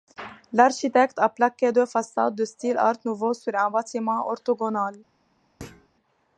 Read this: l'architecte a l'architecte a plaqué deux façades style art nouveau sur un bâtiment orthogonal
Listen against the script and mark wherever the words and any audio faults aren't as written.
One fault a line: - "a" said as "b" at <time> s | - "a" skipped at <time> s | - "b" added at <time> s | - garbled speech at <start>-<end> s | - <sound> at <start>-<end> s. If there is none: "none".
- "l'architecte a" skipped at 1.3 s
- "de" added at 2.3 s
- thud at 5.6-5.9 s